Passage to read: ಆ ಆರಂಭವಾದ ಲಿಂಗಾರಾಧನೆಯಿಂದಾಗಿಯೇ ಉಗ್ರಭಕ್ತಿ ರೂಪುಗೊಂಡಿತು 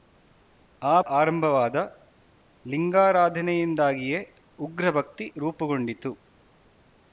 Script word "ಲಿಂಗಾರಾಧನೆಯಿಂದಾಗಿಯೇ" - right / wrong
right